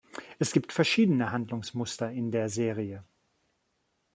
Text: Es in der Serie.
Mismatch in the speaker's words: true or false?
true